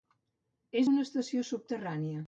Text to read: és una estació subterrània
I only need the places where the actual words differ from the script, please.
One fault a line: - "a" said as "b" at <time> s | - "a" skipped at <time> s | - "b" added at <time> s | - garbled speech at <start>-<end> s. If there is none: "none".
none